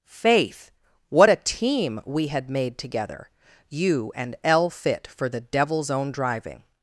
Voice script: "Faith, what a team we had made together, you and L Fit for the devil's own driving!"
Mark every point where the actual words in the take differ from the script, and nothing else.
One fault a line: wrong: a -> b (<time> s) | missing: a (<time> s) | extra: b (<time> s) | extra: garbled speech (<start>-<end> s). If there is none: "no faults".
no faults